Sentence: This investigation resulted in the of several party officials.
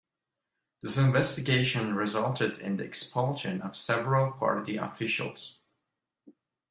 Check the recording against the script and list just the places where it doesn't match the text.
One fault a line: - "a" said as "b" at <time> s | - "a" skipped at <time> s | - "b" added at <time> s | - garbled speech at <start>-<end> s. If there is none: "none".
- "expulsion" added at 2.8 s